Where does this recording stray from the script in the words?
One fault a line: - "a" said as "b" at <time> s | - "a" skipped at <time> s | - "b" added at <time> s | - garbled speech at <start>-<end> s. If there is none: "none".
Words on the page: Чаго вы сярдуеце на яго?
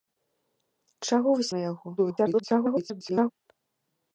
- "сярдуеце" skipped at 1.5 s
- garbled speech at 2.0-3.3 s